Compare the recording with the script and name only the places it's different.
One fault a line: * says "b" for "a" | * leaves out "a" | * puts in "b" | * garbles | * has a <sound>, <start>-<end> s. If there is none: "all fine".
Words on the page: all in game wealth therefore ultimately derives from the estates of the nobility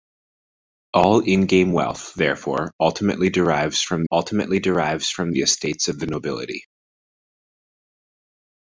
* puts in "ultimately derives from"